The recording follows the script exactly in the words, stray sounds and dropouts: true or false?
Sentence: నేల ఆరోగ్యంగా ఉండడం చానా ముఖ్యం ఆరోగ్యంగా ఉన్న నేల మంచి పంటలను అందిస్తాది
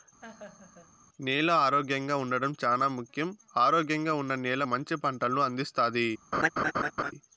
false